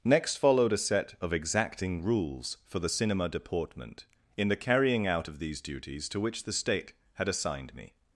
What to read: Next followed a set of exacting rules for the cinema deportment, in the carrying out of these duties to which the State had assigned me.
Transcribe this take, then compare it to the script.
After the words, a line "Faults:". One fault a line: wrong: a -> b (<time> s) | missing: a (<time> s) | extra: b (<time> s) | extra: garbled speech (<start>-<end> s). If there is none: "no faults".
Next followed a set of exacting rules for the cinema deportment, in the carrying out of these duties to which the State had assigned me.
Faults:
no faults